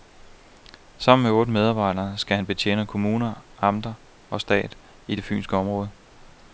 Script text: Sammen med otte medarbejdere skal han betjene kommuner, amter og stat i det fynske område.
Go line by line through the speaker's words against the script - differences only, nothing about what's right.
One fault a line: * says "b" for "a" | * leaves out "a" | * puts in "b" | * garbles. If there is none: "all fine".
all fine